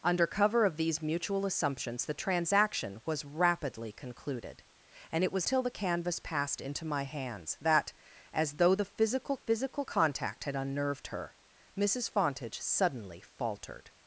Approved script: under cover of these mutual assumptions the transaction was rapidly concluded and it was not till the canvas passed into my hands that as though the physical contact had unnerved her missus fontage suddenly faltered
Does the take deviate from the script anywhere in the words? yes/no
yes